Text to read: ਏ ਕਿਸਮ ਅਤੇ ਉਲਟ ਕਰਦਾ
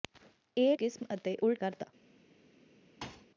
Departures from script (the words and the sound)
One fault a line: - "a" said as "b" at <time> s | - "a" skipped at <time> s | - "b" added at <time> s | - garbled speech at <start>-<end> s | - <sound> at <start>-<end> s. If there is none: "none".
- thud at 3.0-3.3 s